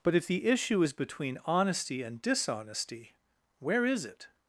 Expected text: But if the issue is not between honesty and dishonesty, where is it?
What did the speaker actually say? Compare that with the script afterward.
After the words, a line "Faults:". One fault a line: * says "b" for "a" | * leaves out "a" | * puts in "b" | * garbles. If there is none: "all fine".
But if the issue is between honesty and dishonesty, where is it?
Faults:
* leaves out "not"